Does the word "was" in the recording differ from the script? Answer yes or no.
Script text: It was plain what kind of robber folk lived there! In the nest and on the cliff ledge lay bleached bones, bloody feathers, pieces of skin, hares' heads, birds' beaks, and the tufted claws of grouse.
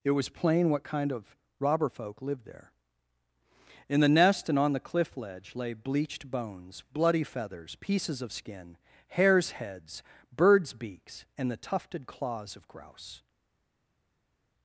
no